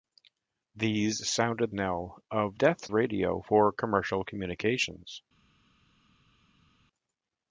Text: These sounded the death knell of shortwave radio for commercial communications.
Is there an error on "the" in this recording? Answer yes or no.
yes